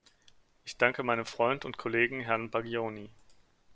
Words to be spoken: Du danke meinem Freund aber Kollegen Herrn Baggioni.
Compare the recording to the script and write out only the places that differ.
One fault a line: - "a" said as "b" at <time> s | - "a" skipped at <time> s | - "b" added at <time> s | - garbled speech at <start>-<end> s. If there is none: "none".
- "Du" said as "Ich" at 0.7 s
- "aber" said as "und" at 1.6 s